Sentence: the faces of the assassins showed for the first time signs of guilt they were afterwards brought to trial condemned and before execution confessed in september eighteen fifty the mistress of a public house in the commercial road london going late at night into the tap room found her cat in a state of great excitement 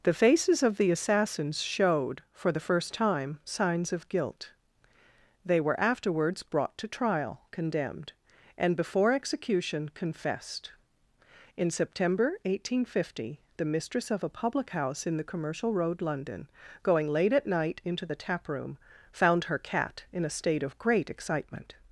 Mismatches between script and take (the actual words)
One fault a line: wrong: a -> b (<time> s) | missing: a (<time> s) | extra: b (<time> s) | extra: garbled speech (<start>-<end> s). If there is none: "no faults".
no faults